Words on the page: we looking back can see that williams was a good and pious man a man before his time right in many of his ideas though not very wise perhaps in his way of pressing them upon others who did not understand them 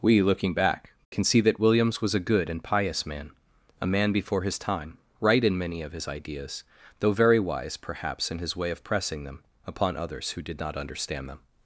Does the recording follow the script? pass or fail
fail